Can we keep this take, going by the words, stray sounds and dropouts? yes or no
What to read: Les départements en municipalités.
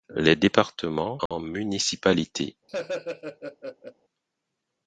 no